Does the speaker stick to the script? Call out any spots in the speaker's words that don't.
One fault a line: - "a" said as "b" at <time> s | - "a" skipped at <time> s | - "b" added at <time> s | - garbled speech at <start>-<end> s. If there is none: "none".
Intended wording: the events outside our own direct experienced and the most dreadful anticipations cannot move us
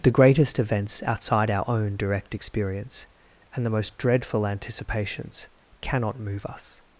- "greatest" added at 0.1 s
- "experienced" said as "experience" at 2.3 s